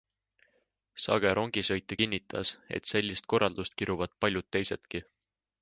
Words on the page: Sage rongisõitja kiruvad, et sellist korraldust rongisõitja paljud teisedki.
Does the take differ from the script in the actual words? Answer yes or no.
yes